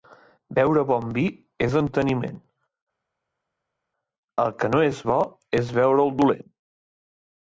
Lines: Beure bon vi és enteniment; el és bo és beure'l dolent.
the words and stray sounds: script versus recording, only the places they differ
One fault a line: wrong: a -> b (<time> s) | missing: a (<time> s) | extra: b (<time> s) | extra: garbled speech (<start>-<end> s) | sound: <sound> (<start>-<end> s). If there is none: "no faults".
extra: que no (4.6 s)